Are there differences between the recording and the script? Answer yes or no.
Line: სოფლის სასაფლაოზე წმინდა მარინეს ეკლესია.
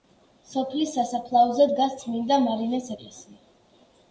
yes